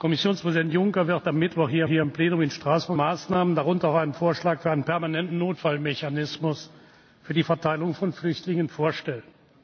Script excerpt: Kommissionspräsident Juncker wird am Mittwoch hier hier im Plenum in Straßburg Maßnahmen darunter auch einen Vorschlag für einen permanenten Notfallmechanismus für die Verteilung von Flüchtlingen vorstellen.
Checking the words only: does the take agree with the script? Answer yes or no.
yes